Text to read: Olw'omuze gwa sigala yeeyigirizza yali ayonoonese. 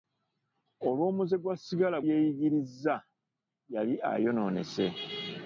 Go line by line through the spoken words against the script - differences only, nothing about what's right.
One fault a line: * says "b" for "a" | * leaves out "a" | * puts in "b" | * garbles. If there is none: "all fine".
all fine